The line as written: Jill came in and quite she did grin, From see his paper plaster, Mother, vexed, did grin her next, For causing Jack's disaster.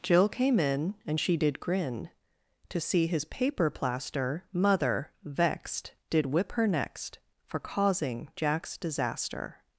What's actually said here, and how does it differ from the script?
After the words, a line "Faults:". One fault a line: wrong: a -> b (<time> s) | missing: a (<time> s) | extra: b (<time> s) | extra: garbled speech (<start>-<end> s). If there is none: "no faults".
Jill came in and she did grin, To see his paper plaster, Mother, vexed, did whip her next, For causing Jack's disaster.
Faults:
missing: quite (1.2 s)
wrong: From -> To (2.7 s)
wrong: grin -> whip (6.3 s)